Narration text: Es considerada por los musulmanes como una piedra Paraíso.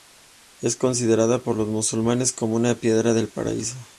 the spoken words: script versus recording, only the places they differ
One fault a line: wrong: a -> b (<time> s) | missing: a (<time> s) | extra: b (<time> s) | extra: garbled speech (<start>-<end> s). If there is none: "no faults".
extra: del (3.1 s)